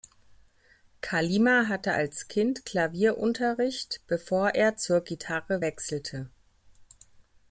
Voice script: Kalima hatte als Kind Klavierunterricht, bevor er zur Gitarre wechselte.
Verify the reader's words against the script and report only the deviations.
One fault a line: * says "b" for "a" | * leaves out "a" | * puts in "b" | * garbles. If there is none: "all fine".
all fine